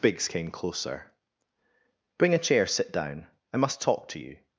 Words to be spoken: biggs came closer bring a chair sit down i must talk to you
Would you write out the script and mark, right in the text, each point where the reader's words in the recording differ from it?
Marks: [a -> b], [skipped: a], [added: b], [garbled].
biggs came closer bring a chair sit down i must talk to you